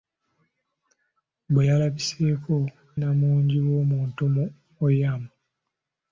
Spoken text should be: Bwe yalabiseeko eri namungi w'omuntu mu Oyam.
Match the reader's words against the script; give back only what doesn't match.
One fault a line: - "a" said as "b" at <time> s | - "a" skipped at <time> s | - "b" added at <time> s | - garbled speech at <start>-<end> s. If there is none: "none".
- "eri" skipped at 2.5 s